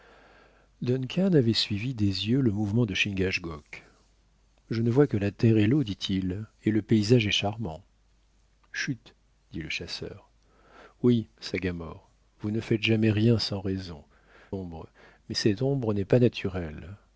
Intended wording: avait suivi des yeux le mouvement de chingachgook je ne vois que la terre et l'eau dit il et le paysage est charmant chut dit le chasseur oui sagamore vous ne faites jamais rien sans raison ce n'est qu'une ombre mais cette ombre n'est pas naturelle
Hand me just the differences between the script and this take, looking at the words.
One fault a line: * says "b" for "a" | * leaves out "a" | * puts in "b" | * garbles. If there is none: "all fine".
* leaves out "ce n'est qu'une"